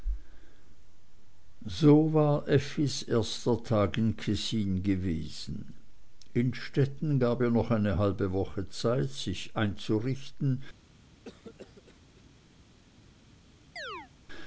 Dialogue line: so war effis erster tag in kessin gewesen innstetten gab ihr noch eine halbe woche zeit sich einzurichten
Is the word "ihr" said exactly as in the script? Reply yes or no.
yes